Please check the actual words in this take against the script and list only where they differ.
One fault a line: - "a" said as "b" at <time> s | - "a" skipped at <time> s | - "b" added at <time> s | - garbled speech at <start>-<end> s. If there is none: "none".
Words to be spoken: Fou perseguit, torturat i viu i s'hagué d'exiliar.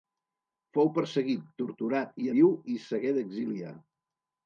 none